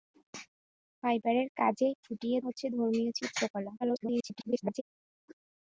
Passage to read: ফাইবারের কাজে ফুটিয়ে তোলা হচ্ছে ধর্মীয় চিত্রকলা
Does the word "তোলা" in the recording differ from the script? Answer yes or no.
yes